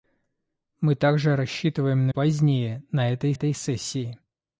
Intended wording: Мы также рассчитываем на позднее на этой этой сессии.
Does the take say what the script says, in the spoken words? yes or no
yes